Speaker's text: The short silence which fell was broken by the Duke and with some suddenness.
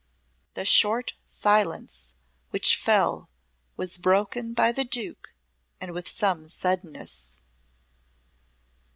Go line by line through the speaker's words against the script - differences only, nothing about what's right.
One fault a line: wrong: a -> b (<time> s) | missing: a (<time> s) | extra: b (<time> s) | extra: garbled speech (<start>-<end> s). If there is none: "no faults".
no faults